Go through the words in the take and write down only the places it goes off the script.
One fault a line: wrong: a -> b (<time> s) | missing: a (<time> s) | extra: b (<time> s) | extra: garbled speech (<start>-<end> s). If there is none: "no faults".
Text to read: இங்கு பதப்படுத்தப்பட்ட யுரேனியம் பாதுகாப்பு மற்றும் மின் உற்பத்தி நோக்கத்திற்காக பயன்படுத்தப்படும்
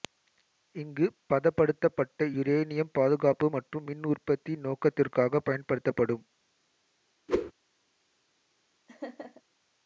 no faults